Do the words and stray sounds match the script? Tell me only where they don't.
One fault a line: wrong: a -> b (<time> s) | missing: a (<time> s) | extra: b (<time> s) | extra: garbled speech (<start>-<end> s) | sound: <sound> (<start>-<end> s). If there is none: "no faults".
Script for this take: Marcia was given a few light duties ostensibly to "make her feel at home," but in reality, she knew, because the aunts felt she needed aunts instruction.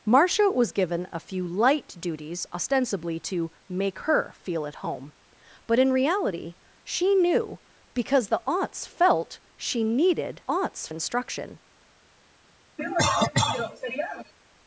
sound: cough (12.8-14.3 s)